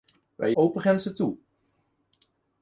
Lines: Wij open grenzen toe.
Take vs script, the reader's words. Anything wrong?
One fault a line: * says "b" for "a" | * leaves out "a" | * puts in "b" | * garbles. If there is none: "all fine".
all fine